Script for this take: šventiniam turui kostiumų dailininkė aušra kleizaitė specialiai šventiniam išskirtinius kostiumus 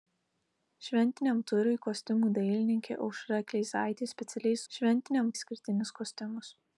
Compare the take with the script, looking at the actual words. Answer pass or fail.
pass